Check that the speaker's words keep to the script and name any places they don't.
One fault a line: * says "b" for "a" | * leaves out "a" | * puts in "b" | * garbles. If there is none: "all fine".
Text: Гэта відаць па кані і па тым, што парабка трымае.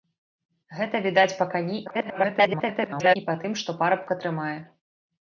* garbles